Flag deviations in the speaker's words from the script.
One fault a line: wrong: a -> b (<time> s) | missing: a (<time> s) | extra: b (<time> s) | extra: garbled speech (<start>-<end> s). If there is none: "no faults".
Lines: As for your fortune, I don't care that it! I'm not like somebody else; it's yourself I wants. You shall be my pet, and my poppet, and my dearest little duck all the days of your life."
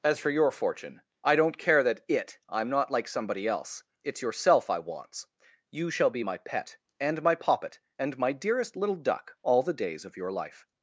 no faults